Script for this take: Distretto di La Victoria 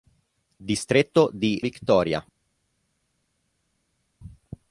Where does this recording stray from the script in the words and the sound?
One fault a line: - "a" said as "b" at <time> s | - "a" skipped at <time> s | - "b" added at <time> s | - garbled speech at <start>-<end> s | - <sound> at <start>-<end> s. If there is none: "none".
- "La" skipped at 1.6 s